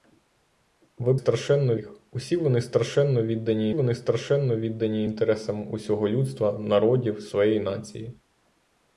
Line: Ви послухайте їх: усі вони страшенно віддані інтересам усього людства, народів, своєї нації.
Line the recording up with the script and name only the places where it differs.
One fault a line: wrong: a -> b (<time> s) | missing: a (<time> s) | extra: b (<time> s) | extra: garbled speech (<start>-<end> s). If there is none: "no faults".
wrong: послухайте -> страшенно (1.1 s)
extra: вони страшенно віддані (3.7 s)